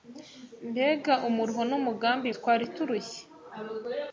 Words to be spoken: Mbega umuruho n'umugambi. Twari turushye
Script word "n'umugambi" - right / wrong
right